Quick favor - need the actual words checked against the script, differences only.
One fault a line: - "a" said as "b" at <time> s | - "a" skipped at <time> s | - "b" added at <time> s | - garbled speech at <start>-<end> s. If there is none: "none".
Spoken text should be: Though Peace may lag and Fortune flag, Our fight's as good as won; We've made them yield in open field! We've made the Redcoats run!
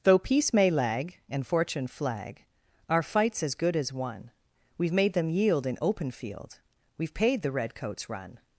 - "made" said as "paid" at 7.1 s